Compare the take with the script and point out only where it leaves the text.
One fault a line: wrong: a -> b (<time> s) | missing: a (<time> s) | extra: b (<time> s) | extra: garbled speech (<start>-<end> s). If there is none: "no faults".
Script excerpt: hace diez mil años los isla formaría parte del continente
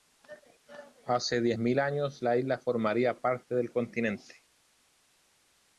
wrong: los -> la (2.2 s)